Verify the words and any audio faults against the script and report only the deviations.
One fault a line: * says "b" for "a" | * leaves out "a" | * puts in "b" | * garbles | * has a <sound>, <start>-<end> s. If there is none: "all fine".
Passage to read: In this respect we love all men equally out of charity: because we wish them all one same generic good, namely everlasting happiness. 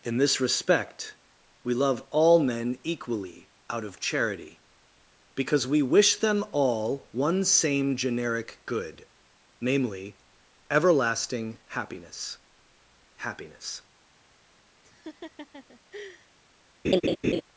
* puts in "happiness"
* has a laugh, 14.8-16.3 s
* has a laugh, 16.8-17.4 s